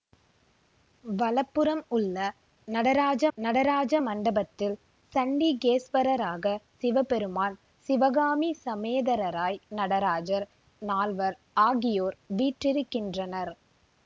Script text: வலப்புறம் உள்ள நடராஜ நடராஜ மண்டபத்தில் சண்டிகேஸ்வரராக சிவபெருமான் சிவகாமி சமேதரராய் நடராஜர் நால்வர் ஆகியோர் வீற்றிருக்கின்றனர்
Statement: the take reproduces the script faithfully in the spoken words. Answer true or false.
true